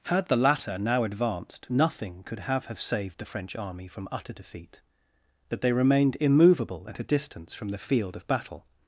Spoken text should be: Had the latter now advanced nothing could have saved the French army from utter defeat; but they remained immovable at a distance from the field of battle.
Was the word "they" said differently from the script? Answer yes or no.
no